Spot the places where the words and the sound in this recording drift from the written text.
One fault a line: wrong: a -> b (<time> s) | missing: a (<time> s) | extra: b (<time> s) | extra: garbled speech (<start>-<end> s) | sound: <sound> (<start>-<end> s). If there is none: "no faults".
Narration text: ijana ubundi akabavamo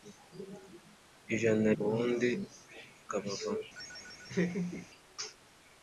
sound: laugh (3.7-4.9 s)